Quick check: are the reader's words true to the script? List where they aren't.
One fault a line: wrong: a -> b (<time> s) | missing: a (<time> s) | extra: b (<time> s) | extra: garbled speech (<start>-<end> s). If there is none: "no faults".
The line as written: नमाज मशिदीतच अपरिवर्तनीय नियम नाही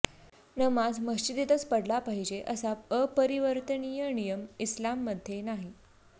extra: पढला पाहिजे असा (1.6 s)
extra: इस्लाममध्ये (4.6 s)